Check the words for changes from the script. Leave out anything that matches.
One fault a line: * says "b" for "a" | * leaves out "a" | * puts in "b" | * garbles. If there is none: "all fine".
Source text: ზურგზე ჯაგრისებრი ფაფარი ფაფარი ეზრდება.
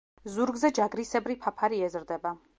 * leaves out "ფაფარი"